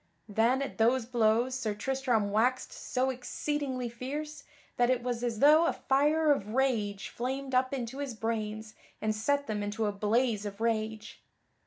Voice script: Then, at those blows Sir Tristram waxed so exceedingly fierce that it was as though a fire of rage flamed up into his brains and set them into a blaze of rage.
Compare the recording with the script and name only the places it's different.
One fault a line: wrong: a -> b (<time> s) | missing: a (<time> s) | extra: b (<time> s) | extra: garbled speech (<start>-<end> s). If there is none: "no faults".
no faults